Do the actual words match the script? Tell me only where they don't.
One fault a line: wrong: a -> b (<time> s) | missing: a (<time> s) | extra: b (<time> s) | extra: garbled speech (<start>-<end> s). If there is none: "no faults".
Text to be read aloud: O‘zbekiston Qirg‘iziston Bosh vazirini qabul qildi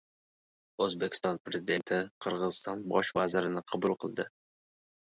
extra: Prezidenti (1.5 s)